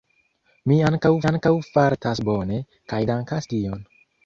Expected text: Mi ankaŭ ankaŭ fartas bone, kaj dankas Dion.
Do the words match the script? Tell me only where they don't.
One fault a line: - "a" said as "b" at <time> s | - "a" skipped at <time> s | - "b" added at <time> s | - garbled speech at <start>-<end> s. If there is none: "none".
none